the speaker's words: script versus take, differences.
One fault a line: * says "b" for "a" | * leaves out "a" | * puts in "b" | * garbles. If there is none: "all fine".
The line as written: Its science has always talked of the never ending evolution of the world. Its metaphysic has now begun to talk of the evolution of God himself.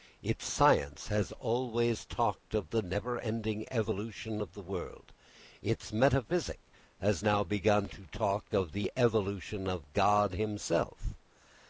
all fine